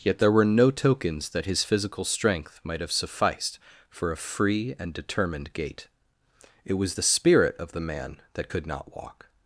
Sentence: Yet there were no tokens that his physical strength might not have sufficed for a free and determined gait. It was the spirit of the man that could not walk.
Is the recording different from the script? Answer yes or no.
yes